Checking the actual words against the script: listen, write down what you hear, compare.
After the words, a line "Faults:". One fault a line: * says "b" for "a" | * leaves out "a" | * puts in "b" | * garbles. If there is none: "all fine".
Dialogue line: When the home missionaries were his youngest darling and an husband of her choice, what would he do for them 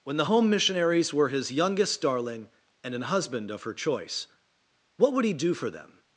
When the home missionaries were his youngest darling and an husband of her choice, what would he do for them
Faults:
all fine